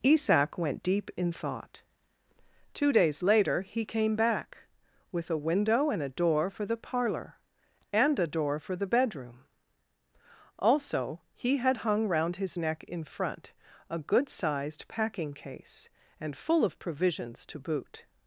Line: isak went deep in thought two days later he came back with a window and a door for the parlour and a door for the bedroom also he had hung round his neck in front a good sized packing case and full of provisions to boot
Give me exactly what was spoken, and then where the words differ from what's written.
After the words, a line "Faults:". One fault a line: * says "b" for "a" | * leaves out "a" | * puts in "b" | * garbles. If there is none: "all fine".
isak went deep in thought two days later he came back with a window and a door for the parlour and a door for the bedroom also he had hung round his neck in front a good sized packing case and full of provisions to boot
Faults:
all fine